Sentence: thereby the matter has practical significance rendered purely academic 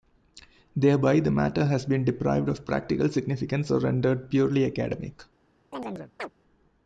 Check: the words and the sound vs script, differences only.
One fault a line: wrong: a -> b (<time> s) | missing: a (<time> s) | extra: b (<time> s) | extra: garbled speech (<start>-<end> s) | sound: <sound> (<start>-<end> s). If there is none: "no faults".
extra: been deprived of (1.8 s)
extra: or (3.7 s)
sound: chirp (5.7-6.3 s)